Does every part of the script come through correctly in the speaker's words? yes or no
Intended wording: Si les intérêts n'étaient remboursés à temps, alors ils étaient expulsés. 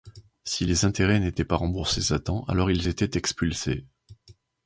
no